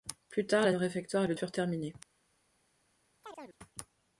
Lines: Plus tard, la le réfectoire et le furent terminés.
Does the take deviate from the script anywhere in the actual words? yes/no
no